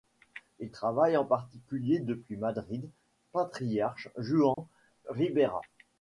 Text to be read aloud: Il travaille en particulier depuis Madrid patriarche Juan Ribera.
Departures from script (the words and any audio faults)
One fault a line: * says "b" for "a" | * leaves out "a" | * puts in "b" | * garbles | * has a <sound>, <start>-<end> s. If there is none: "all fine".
* has a dropout, 4.5-4.6 s